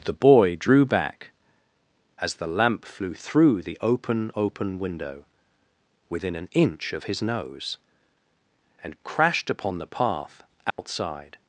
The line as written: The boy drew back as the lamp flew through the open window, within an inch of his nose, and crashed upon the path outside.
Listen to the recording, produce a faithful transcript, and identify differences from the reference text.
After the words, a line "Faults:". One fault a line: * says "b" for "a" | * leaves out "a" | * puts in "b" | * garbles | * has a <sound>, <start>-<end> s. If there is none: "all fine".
The boy drew back as the lamp flew through the open open window, within an inch of his nose, and crashed upon the path outside.
Faults:
* puts in "open"
* has a dropout, 10.7-10.8 s